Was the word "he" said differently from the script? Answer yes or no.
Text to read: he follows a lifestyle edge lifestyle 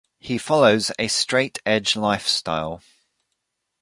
no